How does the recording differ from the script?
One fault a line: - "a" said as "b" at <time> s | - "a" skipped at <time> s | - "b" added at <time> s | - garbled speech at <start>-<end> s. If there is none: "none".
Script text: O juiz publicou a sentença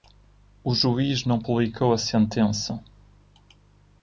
- "não" added at 1.3 s